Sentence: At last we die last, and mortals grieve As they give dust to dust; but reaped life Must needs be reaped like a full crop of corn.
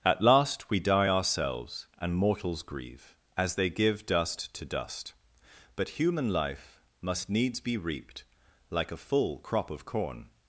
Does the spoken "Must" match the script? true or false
true